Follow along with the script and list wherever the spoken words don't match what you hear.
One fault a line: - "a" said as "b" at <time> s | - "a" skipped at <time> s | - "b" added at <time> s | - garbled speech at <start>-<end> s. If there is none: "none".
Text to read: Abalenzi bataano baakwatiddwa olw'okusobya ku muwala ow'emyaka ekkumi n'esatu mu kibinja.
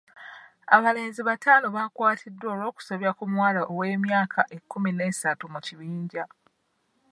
none